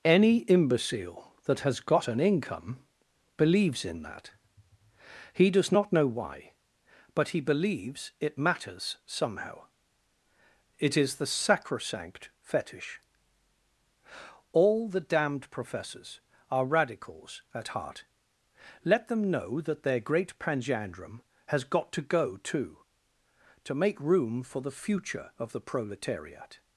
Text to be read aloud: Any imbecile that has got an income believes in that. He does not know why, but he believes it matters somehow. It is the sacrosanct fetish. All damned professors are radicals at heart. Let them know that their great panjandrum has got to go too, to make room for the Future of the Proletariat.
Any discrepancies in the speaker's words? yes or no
yes